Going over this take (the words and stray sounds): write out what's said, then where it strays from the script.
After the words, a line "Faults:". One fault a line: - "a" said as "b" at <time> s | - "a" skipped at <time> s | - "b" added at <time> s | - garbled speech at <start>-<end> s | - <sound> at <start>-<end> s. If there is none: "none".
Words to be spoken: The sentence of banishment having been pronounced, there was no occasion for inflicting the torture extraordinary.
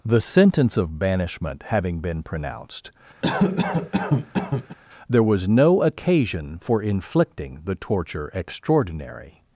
The sentence of banishment having been pronounced, there was no occasion for inflicting the torture extraordinary.
Faults:
- cough at 3.2-4.8 s